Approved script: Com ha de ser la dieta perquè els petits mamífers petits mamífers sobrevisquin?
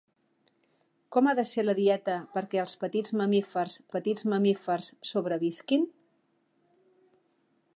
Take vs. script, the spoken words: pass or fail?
pass